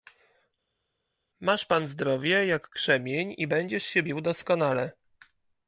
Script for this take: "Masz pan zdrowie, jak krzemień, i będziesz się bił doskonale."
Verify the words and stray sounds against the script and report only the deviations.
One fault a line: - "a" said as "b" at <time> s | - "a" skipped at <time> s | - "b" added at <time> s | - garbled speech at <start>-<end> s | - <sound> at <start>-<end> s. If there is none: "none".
none